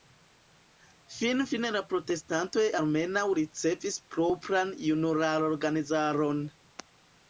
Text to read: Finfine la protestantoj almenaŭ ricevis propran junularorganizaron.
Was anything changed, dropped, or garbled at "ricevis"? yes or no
no